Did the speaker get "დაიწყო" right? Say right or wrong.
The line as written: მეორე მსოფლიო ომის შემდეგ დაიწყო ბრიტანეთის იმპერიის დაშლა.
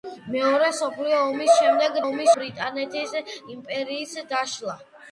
wrong